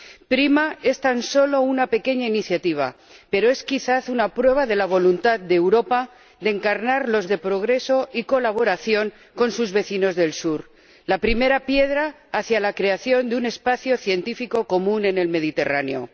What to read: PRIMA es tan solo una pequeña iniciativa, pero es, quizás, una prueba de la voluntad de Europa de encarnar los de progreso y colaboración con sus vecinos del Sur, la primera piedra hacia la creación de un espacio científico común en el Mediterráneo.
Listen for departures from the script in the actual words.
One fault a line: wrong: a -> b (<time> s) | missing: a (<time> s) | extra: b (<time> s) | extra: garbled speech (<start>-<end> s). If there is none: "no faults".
no faults